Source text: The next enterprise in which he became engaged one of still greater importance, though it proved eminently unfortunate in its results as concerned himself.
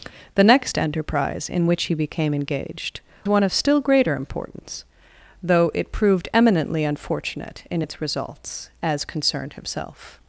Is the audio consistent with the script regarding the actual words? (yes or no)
yes